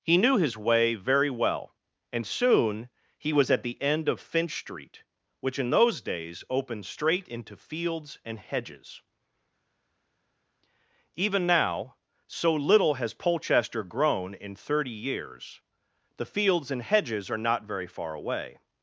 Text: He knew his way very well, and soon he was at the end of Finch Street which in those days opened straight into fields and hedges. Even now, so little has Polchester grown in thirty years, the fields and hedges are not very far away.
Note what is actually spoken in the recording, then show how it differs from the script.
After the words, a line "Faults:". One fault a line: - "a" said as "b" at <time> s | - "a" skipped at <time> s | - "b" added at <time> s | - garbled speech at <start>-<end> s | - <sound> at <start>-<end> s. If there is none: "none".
He knew his way very well, and soon he was at the end of Finch Street which in those days opened straight into fields and hedges. Even now, so little has Polchester grown in thirty years, the fields and hedges are not very far away.
Faults:
none